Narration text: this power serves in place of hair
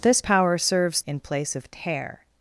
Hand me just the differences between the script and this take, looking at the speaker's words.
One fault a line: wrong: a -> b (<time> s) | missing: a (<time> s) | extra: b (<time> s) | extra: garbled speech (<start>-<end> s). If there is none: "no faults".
no faults